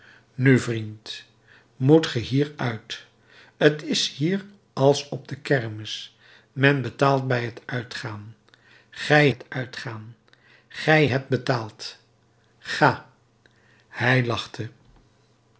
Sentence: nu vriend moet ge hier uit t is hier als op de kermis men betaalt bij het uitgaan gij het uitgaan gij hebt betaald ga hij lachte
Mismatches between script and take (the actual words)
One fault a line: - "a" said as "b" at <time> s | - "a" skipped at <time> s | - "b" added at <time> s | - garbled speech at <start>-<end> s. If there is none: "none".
none